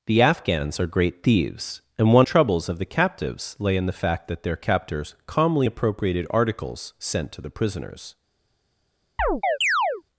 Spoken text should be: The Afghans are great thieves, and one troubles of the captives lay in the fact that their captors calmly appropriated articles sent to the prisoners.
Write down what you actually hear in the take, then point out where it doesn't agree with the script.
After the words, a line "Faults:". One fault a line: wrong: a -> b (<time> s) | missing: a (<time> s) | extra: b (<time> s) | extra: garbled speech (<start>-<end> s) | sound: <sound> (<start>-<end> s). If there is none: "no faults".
The Afghans are great thieves, and one troubles of the captives lay in the fact that their captors calmly appropriated articles sent to the prisoners.
Faults:
sound: chirp (9.2-10.0 s)